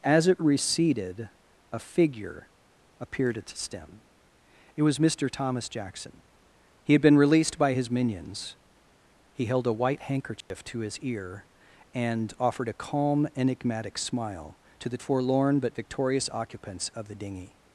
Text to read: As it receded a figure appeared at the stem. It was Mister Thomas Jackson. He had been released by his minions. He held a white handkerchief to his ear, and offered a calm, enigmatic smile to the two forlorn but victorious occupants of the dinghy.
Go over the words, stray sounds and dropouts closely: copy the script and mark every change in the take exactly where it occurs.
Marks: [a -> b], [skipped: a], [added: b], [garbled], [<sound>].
As it receded a figure appeared at the stem. It was Mister Thomas Jackson. He had been released by his minions. He held a white handkerchief [dropout] to his ear, and offered a calm, enigmatic smile to the [skipped: two] forlorn but victorious occupants of the dinghy.